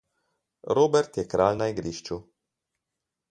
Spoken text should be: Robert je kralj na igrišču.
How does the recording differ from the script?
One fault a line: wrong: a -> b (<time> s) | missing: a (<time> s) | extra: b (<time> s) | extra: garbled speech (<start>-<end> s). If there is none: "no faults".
no faults